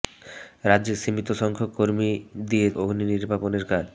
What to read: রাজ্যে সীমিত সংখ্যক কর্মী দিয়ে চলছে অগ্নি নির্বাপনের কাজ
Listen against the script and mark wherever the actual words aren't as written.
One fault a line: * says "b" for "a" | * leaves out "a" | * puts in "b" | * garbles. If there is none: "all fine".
* leaves out "চলছে"